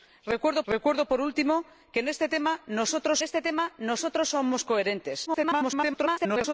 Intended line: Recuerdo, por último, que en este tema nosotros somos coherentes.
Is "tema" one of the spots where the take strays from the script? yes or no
no